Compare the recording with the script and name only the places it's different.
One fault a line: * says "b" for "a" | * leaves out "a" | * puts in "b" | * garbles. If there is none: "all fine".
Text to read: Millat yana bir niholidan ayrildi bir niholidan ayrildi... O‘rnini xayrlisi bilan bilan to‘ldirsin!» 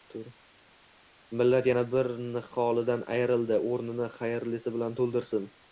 * leaves out "bir niholidan ayrildi"
* leaves out "bilan"